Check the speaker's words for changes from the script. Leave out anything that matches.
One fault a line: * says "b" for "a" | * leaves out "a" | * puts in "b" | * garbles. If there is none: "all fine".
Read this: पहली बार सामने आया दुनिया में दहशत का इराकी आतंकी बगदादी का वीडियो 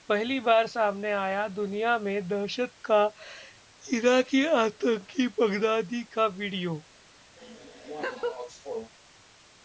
all fine